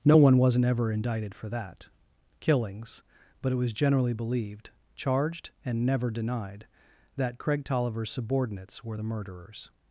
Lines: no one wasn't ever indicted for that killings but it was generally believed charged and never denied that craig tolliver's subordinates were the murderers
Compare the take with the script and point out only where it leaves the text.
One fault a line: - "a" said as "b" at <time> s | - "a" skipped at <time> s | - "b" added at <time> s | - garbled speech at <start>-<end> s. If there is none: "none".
none